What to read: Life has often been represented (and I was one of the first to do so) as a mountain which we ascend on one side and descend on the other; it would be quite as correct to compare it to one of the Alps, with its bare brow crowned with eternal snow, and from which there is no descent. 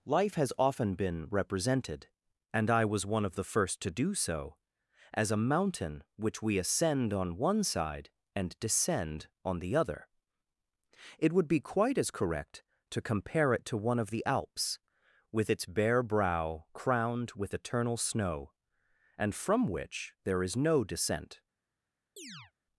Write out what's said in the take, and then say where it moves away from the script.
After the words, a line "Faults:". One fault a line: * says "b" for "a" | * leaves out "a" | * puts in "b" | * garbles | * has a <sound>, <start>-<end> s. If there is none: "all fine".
Life has often been represented (and I was one of the first to do so) as a mountain which we ascend on one side and descend on the other; it would be quite as correct to compare it to one of the Alps, with its bare brow crowned with eternal snow, and from which there is no descent.
Faults:
* has a chirp, 22.2-22.5 s